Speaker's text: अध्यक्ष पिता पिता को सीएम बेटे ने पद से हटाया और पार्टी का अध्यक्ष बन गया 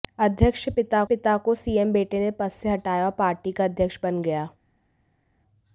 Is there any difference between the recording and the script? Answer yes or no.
no